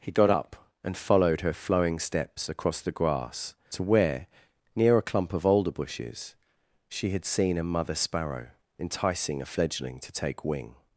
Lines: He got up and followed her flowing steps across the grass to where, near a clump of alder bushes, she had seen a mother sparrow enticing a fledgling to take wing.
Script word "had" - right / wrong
right